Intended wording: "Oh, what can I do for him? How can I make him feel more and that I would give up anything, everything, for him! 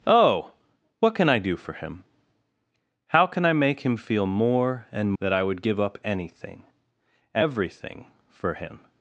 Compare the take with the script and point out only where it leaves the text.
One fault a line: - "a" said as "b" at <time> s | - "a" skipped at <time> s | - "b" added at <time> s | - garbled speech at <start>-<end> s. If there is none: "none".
none